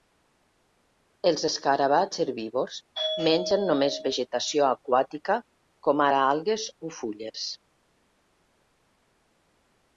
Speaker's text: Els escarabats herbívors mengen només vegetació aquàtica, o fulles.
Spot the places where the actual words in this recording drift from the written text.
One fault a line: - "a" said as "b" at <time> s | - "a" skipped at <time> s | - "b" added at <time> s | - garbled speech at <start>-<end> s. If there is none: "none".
- "com ara algues" added at 5.9 s